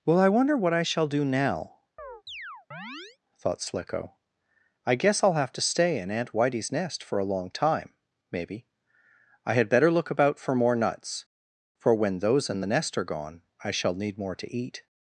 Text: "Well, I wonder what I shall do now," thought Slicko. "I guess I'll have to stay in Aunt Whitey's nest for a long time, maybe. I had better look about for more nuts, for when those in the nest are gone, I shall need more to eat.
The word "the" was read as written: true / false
true